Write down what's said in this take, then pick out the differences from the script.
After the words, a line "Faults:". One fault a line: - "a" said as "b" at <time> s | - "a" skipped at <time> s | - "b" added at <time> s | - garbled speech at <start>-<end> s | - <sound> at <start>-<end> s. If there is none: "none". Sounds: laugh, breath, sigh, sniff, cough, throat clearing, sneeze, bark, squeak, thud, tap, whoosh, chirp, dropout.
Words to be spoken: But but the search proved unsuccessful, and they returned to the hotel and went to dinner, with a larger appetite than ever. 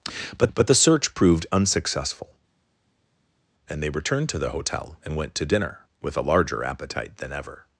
But but the search proved unsuccessful, and they returned to the hotel and went to dinner, with a larger appetite than ever.
Faults:
none